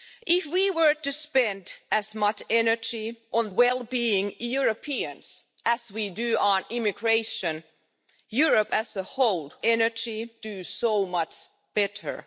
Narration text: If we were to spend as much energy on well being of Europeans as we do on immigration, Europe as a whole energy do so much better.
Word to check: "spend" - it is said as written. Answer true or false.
true